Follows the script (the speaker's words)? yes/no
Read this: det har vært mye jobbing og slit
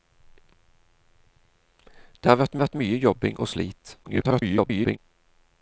no